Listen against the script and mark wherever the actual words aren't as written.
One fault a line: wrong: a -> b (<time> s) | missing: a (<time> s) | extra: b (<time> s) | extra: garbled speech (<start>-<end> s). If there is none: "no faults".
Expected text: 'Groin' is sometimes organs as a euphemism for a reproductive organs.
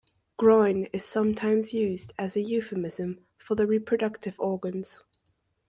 wrong: organs -> used (1.7 s)
wrong: a -> the (3.6 s)